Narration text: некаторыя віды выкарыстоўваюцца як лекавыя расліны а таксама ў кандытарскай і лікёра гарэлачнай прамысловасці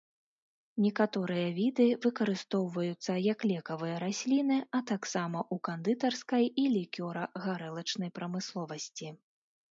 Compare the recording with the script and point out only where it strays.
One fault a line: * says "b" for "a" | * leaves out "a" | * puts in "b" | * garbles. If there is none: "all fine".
all fine